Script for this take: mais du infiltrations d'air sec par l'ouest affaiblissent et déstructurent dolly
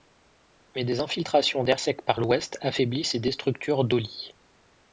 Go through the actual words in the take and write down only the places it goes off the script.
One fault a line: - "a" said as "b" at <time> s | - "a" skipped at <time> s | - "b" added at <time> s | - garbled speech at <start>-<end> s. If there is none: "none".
- "du" said as "des" at 0.8 s